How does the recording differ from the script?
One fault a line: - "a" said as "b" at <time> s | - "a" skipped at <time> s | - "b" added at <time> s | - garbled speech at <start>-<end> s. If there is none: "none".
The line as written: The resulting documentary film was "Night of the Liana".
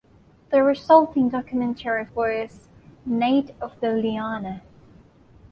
- "film" skipped at 2.1 s